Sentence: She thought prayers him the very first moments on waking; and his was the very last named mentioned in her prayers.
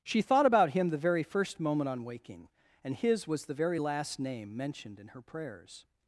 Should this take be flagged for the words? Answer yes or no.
yes